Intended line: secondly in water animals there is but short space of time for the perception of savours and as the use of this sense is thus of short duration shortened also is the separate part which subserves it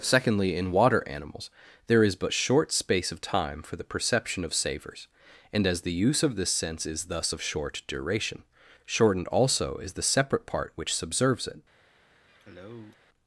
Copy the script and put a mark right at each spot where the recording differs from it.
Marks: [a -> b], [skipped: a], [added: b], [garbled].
secondly in water animals there is but short space of time for the perception of savours and as the use of this sense is thus of short duration shortened also is the separate part which subserves it